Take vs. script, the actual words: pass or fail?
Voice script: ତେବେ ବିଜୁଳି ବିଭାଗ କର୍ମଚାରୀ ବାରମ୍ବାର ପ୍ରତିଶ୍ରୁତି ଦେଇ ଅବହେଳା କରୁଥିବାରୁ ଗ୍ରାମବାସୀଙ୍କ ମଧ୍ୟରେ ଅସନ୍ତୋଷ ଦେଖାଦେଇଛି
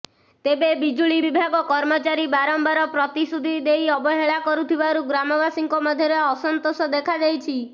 pass